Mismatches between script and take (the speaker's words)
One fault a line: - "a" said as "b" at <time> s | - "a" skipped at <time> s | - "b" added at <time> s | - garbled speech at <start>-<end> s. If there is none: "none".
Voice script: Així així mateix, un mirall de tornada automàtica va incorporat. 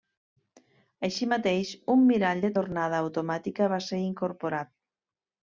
- "així" skipped at 1.3 s
- "ser" added at 3.9 s